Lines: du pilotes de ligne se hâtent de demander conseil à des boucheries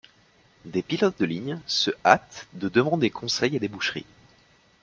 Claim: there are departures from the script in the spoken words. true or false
true